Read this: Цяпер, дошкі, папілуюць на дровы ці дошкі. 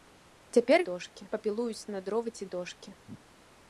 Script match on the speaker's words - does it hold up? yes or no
yes